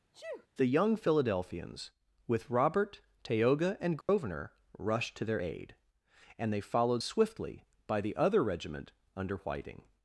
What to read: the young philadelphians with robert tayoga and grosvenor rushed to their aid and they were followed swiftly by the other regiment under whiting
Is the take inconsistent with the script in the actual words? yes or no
yes